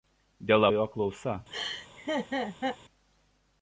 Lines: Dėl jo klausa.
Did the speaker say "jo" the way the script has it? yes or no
yes